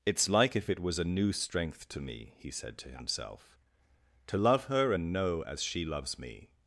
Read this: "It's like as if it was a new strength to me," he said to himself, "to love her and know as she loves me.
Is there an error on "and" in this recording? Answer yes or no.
no